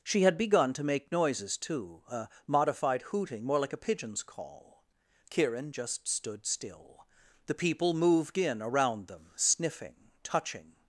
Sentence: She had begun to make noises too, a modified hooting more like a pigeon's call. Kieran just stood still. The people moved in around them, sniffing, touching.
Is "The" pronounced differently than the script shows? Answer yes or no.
no